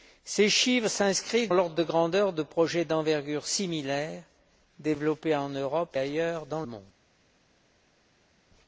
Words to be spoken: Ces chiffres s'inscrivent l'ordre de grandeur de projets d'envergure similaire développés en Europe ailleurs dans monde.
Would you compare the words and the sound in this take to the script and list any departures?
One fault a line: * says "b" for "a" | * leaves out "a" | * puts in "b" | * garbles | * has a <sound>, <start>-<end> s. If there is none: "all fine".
all fine